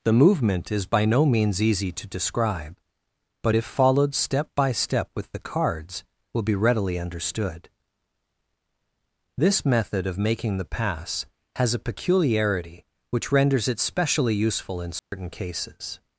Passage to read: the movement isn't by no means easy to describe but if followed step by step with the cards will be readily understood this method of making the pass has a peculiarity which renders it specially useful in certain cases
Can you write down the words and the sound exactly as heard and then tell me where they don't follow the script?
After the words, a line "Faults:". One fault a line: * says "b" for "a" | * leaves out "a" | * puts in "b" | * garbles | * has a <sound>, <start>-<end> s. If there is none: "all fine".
the movement is by no means easy to describe but if followed step by step with the cards will be readily understood this method of making the pass has a peculiarity which renders it specially useful in certain cases
Faults:
* says "is" for "isn't"
* has a dropout, 15.0-15.1 s